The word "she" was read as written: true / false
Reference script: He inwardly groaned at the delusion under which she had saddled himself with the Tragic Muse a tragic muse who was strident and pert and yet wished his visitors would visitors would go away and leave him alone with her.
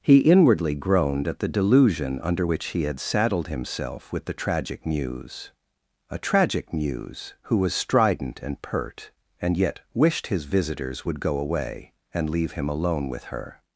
false